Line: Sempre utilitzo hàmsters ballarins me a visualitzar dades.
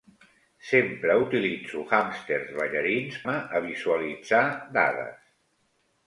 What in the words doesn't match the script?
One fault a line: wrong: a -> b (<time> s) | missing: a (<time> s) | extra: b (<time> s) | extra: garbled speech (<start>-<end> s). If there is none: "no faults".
no faults